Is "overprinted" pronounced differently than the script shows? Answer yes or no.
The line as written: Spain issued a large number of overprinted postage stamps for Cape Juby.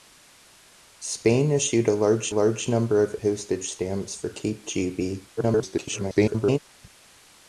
yes